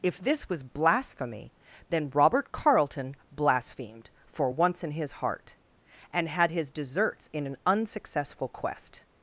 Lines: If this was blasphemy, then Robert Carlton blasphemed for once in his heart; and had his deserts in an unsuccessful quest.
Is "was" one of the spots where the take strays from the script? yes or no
no